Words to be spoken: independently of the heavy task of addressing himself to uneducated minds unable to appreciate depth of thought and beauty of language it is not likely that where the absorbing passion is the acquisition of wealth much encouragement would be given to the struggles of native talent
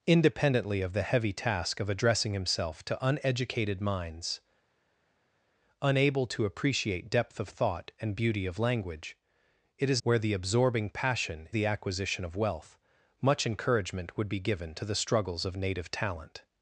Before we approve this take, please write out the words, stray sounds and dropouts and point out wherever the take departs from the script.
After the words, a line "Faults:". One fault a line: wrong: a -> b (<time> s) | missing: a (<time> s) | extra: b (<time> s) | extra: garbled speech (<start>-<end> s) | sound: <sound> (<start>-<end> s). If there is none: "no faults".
independently of the heavy task of addressing himself to uneducated minds unable to appreciate depth of thought and beauty of language it is where the absorbing passion the acquisition of wealth much encouragement would be given to the struggles of native talent
Faults:
missing: not likely that (10.0 s)
missing: is (11.5 s)